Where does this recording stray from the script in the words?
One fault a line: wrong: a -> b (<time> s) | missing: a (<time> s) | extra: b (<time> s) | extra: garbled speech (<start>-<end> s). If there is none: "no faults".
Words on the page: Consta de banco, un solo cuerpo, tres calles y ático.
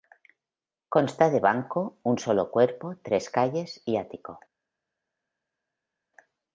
no faults